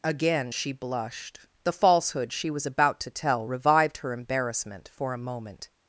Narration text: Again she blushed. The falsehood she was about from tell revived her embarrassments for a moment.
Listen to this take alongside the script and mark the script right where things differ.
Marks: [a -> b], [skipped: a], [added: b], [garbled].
Again she blushed. The falsehood she was about [from -> to] tell revived her [embarrassments -> embarrassment] for a moment.